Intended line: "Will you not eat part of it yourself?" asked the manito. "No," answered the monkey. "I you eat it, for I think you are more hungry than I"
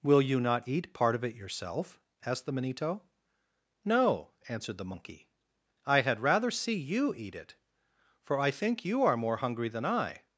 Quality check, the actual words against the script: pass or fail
fail